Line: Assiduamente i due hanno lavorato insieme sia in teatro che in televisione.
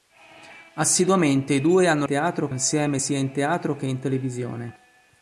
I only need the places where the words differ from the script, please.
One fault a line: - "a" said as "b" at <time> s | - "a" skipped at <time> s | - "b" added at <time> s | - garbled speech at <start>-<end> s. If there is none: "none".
- "lavorato" said as "teatro" at 2.1 s